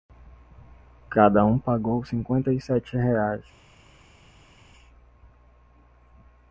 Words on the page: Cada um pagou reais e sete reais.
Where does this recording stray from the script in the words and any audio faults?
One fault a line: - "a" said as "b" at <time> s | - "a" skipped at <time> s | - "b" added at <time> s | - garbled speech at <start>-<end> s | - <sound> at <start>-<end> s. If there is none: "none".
- "reais" said as "cinquenta" at 2.0 s